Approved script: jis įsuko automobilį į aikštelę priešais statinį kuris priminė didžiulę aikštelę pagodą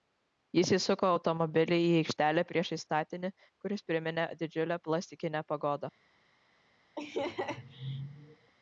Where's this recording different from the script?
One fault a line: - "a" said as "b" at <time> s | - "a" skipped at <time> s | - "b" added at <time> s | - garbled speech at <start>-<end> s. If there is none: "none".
- "aikštelę" said as "plastikinę" at 4.9 s